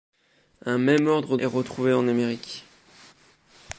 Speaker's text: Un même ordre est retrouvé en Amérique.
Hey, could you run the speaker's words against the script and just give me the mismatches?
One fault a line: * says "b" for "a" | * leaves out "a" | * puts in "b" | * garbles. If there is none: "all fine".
all fine